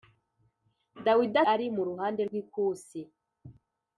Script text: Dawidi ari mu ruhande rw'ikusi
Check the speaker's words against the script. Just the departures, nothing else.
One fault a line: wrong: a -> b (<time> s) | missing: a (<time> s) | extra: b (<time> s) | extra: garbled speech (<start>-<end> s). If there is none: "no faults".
no faults